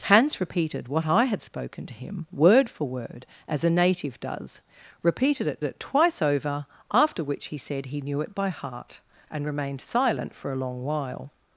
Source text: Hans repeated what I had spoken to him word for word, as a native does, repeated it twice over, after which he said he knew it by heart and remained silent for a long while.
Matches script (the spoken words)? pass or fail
fail